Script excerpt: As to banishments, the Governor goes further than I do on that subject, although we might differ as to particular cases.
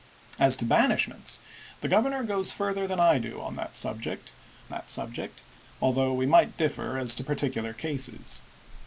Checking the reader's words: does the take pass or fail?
fail